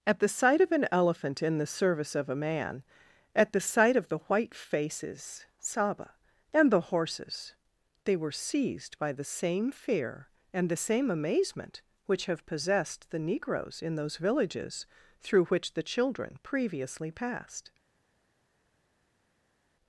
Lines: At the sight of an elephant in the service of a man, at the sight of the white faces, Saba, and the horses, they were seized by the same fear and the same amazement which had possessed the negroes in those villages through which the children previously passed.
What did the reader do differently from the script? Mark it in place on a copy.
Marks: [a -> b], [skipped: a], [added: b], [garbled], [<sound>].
At the sight of an elephant in the service of a man, at the sight of the white faces, Saba, and the horses, they were seized by the same fear and the same amazement which [had -> have] possessed the negroes in those villages through which the children previously passed.